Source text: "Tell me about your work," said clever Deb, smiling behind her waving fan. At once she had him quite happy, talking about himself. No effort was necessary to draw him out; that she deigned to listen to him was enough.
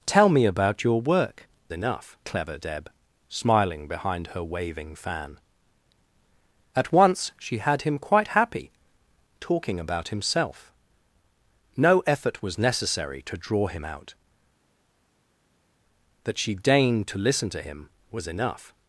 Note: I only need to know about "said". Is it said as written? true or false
false